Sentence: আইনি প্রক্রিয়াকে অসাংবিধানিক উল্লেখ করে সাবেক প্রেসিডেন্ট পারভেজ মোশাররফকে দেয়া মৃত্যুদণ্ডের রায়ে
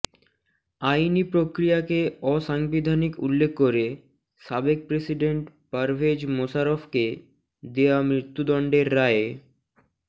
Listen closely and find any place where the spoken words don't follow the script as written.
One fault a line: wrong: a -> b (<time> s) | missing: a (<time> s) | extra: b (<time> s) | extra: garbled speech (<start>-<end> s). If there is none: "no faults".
no faults